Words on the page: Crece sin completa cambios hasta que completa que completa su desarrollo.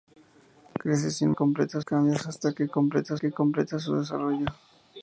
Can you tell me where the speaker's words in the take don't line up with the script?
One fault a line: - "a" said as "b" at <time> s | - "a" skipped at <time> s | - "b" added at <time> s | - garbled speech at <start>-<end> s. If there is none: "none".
none